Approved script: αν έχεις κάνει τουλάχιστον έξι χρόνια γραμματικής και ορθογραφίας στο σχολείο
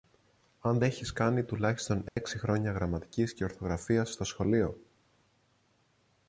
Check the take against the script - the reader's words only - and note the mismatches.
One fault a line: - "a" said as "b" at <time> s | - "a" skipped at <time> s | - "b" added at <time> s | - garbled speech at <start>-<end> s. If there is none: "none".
none